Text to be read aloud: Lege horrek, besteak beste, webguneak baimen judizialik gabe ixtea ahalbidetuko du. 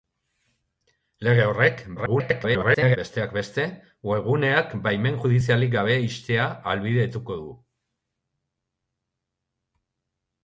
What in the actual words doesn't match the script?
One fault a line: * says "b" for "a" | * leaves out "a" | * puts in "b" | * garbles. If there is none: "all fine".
* garbles